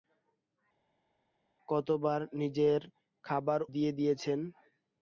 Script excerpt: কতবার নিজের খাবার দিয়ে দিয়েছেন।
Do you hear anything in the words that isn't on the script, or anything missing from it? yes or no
no